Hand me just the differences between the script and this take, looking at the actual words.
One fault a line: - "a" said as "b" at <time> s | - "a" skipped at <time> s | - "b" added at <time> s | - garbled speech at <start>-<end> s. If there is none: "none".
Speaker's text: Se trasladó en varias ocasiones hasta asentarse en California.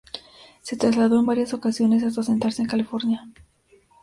none